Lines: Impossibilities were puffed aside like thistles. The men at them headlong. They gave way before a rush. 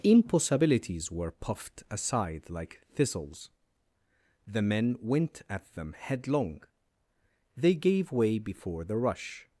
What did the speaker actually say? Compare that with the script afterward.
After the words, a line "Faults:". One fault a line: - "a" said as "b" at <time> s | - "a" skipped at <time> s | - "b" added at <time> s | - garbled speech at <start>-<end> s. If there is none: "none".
Impossibilities were puffed aside like thistles. The men went at them headlong. They gave way before the rush.
Faults:
- "went" added at 5.0 s
- "a" said as "the" at 8.8 s